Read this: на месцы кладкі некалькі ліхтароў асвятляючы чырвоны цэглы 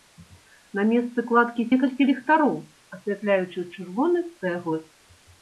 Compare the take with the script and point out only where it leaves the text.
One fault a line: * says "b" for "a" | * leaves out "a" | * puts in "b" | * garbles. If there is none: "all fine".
all fine